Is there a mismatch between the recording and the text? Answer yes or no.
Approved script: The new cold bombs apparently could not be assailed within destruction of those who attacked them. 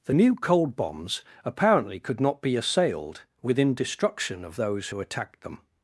no